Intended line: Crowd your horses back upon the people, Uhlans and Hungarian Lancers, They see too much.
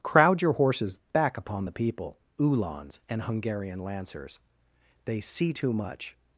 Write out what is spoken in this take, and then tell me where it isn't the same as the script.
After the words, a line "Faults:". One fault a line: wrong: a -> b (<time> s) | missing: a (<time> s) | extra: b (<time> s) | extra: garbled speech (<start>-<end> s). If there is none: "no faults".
Crowd your horses back upon the people, Uhlans and Hungarian Lancers, They see too much.
Faults:
no faults